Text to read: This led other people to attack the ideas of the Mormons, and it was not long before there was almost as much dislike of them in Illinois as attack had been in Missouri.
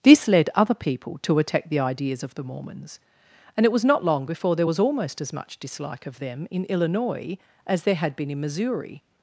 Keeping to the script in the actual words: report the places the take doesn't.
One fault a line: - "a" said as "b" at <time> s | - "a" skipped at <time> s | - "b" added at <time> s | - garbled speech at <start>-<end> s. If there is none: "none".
- "attack" said as "there" at 7.8 s